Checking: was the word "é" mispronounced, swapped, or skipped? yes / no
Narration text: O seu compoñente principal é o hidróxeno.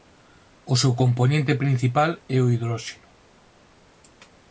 no